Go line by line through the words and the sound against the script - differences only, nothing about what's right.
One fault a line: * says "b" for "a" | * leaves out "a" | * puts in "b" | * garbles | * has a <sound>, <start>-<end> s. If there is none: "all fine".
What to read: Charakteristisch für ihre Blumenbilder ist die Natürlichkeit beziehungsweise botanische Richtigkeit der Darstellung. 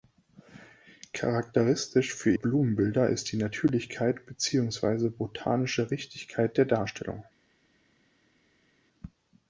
* leaves out "ihre"